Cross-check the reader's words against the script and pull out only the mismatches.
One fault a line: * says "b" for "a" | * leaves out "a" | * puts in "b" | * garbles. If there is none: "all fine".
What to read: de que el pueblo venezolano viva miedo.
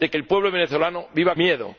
all fine